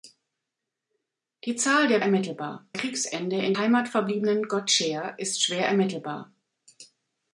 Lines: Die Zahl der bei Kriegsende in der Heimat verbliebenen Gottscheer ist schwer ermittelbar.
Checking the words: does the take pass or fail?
fail